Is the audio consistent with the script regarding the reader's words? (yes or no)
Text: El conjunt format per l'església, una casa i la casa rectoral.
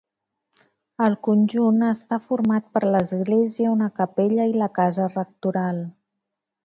no